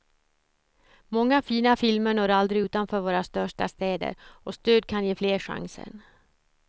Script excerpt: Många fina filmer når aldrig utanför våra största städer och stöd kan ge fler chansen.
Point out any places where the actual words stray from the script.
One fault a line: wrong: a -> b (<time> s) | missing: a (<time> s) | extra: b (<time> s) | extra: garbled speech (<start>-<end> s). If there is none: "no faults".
no faults